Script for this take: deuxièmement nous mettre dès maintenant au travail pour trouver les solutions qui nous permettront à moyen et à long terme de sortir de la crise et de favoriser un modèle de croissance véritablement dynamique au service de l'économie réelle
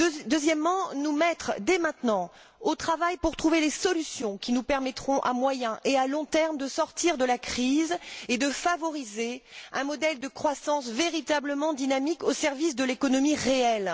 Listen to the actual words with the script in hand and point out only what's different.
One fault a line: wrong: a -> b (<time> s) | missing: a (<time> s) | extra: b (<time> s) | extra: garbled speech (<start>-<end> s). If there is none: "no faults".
no faults